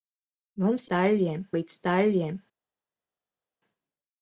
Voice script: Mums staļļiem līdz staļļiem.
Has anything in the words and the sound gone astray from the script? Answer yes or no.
no